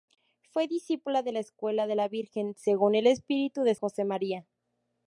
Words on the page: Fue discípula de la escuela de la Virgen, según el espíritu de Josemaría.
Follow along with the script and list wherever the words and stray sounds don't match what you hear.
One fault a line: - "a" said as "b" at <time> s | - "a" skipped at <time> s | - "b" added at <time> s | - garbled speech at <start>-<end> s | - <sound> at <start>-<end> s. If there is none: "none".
none